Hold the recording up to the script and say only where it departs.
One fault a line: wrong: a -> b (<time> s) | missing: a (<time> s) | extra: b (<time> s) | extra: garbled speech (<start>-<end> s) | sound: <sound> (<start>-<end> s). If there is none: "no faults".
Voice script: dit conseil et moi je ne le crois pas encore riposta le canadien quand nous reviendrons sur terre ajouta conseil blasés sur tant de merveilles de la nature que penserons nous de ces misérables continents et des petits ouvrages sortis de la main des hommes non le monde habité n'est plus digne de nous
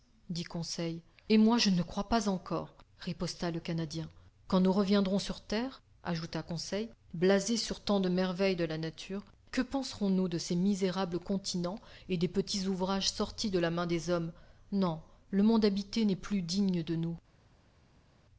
no faults